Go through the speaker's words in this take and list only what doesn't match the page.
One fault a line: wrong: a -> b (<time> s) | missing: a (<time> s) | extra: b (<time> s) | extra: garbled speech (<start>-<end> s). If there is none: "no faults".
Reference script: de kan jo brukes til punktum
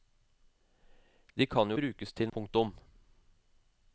no faults